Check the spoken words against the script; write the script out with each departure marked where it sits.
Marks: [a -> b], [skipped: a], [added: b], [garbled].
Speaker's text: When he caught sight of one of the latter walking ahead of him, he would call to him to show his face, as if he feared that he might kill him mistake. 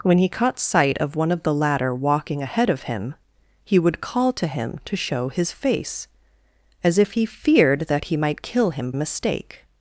When he caught sight of one of the latter walking ahead of him, he would call to him to show his face, as if he feared that he might kill him mistake.